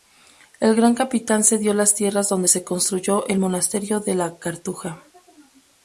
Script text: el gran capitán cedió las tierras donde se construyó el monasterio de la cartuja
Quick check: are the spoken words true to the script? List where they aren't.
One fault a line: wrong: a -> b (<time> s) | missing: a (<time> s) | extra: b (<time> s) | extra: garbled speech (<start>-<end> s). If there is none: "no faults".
no faults